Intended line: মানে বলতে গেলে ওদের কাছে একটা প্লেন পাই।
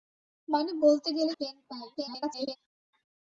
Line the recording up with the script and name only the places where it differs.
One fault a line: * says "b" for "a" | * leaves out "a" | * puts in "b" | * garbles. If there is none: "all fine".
* leaves out "ওদের কাছে একটা"
* garbles